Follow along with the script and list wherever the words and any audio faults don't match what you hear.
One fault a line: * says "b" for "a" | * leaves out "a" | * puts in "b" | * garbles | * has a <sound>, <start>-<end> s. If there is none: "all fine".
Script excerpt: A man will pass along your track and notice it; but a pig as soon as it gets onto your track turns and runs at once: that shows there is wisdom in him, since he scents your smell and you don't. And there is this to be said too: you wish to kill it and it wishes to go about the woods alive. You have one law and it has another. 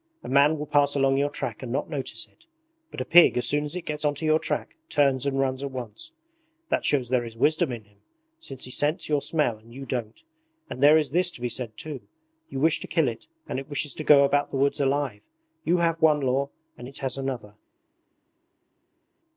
* puts in "not"